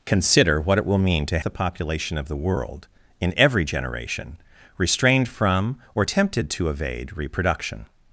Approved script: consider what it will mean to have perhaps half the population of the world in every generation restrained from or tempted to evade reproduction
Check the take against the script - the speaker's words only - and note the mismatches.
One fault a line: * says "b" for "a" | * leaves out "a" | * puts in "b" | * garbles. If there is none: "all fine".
* leaves out "have perhaps half"